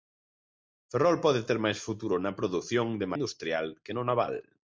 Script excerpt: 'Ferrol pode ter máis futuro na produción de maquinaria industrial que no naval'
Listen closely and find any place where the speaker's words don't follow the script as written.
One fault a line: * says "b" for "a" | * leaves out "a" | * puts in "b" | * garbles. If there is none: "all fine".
* leaves out "maquinaria"